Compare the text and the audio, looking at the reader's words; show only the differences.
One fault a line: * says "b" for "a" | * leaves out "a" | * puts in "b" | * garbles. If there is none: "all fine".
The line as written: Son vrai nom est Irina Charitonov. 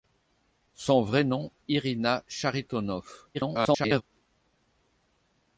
* leaves out "est"
* garbles